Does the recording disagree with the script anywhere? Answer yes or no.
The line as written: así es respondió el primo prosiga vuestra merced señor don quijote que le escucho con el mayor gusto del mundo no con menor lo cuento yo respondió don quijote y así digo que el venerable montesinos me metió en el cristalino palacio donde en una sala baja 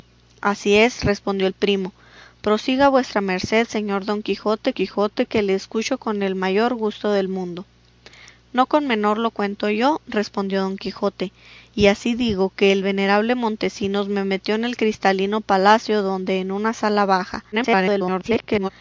yes